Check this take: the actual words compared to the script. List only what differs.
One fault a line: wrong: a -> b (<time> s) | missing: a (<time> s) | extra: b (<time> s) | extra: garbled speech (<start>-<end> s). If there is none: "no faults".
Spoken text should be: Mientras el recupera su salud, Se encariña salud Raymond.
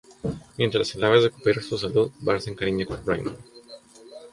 extra: ave (1.0 s)
extra: Bart (2.2 s)
wrong: salud -> con (2.9 s)